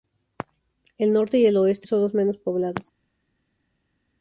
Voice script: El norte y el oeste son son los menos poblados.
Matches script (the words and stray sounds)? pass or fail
fail